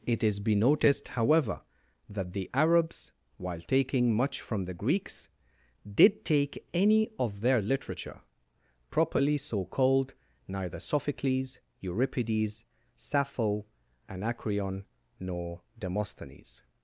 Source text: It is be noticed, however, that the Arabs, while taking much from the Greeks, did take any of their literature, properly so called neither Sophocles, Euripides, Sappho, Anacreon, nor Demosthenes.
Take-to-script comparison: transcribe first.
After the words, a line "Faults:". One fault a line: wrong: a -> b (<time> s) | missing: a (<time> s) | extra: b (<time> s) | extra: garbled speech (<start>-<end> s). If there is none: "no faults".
It is be noticed, however, that the Arabs, while taking much from the Greeks, did take any of their literature, properly so called neither Sophocles, Euripides, Sappho, Anacreon, nor Demosthenes.
Faults:
no faults